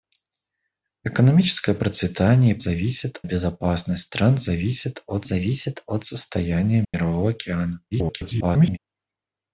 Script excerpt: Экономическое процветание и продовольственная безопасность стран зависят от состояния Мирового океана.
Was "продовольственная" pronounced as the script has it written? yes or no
no